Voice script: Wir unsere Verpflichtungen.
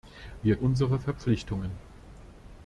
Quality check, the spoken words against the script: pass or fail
pass